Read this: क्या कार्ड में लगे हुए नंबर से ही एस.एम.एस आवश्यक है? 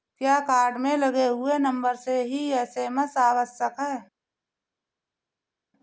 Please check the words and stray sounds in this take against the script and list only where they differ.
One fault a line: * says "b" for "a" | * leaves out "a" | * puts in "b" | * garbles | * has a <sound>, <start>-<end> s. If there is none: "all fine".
all fine